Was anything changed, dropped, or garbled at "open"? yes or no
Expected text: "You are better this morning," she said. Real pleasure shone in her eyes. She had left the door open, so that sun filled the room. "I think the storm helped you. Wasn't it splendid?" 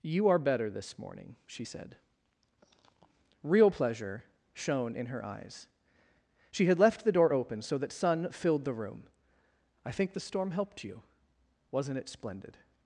no